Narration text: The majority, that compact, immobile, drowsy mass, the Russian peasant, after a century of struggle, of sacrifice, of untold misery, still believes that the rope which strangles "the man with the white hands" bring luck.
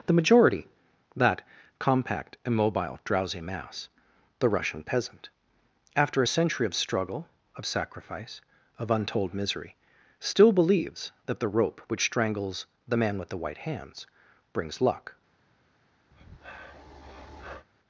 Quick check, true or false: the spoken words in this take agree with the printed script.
false